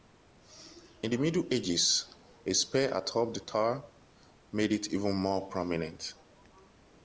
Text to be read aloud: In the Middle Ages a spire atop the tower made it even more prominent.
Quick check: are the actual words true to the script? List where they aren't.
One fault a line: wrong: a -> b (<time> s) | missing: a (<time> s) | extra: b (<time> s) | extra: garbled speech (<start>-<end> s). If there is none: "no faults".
no faults